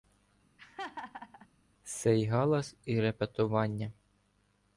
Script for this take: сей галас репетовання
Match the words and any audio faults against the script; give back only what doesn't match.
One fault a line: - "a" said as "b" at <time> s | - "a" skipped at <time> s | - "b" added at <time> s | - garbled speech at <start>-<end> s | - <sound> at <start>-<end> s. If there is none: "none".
- laugh at 0.6-1.5 s
- "і" added at 2.8 s